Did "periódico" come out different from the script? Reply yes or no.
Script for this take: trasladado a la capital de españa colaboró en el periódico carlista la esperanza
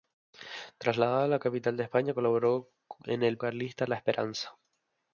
yes